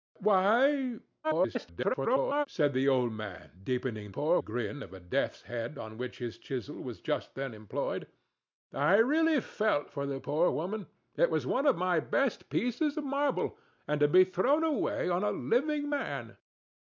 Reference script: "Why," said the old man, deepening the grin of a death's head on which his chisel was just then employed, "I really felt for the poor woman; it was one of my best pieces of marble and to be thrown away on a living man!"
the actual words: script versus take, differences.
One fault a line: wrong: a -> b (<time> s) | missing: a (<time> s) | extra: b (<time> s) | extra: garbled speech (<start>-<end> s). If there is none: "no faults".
extra: garbled speech (1.2-2.5 s)
wrong: the -> poor (4.1 s)